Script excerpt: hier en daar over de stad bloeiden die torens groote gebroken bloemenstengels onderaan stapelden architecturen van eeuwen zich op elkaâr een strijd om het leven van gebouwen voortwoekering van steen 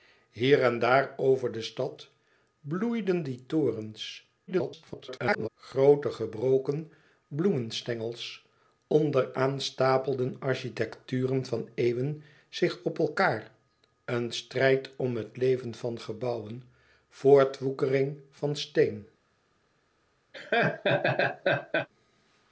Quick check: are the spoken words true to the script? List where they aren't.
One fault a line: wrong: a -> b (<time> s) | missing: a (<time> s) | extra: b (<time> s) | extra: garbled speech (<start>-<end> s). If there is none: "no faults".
extra: garbled speech (4.5-5.5 s)